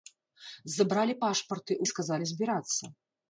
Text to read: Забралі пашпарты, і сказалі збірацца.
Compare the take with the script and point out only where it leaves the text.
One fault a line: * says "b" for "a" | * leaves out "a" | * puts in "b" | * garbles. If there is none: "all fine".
all fine